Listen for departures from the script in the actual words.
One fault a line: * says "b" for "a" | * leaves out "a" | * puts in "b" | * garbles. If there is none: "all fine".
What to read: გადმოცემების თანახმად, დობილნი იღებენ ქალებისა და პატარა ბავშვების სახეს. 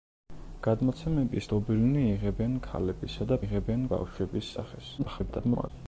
* leaves out "თანახმად"
* says "იღებენ" for "პატარა"
* garbles